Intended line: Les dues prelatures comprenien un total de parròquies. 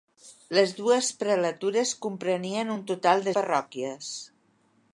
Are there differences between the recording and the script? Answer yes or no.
no